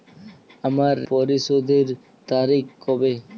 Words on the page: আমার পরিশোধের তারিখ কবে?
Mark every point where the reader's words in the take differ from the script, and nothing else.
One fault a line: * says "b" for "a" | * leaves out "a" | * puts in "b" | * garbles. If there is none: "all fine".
all fine